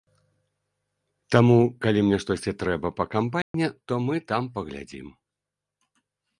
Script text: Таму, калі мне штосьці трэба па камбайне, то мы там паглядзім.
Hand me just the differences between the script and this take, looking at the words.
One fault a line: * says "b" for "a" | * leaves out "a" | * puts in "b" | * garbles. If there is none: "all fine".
all fine